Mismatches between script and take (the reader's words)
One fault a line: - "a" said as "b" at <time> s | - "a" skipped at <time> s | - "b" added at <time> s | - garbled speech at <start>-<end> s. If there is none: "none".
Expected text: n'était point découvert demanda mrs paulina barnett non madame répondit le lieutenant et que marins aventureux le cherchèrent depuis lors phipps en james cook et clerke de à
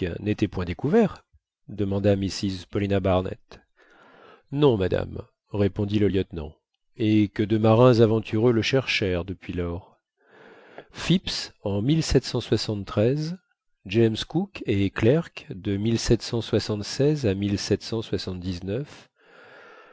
- "de" added at 7.4 s